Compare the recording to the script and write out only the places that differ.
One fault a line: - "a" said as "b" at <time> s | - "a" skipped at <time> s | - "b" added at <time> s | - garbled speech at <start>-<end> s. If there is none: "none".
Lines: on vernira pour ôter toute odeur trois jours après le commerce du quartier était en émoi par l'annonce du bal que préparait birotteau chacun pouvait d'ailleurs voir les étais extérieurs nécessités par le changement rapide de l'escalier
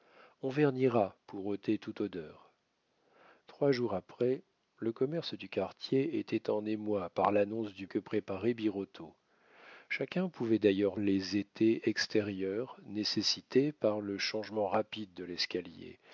- "bal" skipped at 7.8 s
- "voir" skipped at 11.0 s